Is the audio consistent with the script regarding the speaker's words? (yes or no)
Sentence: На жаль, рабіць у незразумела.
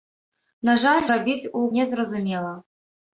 yes